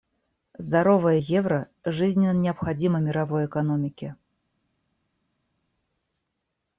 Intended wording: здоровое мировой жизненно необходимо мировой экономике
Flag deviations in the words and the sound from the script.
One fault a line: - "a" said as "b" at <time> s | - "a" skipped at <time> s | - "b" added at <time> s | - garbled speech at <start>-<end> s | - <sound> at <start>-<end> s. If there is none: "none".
- "мировой" said as "евро" at 1.1 s